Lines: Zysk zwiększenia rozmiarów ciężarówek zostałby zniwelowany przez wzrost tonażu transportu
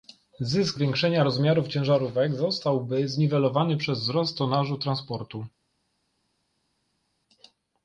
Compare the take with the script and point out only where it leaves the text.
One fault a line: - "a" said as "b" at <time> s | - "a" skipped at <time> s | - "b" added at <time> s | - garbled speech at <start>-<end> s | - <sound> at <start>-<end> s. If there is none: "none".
none